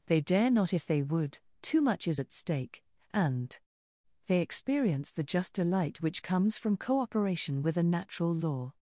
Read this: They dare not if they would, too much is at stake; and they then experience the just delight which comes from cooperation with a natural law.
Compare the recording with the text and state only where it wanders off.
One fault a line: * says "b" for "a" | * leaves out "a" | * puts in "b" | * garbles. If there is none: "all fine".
* leaves out "then"